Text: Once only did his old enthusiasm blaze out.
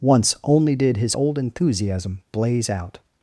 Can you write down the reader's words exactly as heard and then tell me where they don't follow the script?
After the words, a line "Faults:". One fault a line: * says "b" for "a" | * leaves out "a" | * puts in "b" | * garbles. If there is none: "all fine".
Once only did his old enthusiasm blaze out.
Faults:
all fine